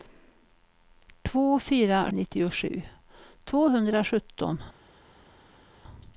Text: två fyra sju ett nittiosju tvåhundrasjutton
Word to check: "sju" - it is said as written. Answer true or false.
false